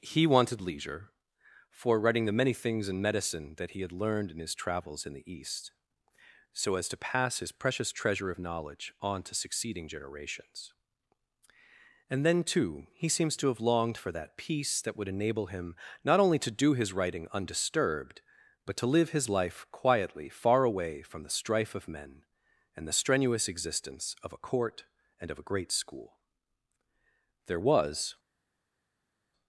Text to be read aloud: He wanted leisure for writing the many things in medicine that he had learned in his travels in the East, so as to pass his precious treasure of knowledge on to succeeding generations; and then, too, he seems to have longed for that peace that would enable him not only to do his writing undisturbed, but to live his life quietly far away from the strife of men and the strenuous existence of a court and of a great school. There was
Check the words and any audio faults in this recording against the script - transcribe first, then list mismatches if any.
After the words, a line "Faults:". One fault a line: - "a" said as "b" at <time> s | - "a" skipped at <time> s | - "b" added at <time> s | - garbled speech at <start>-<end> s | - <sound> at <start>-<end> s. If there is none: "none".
He wanted leisure for writing the many things in medicine that he had learned in his travels in the East, so as to pass his precious treasure of knowledge on to succeeding generations; and then, too, he seems to have longed for that peace that would enable him not only to do his writing undisturbed, but to live his life quietly far away from the strife of men and the strenuous existence of a court and of a great school. There was
Faults:
none